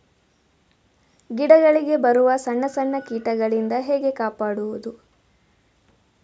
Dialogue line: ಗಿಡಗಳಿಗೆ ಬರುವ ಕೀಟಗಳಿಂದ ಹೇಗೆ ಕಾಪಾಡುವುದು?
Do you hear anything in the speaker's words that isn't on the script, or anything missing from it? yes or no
yes